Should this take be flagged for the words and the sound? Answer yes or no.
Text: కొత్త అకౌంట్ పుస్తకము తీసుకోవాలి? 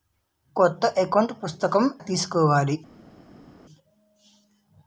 no